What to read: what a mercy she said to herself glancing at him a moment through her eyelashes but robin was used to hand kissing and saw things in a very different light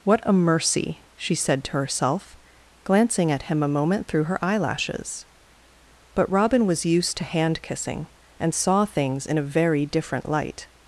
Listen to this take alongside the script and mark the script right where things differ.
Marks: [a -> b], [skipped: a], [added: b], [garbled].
what a mercy she said to herself glancing at him a moment through her eyelashes but robin was used to hand kissing and saw things in a very different light